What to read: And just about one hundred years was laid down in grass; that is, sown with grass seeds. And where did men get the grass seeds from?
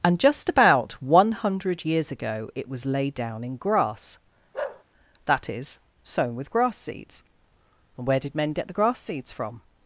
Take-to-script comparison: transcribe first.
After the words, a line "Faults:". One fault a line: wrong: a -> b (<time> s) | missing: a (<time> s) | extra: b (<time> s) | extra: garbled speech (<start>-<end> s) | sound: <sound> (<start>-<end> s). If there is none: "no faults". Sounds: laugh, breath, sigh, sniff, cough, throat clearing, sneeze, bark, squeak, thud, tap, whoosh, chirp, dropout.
And just about one hundred years ago it was laid down in grass; that is, sown with grass seeds. And where did men get the grass seeds from?
Faults:
extra: ago it (2.1 s)
sound: bark (4.5-4.8 s)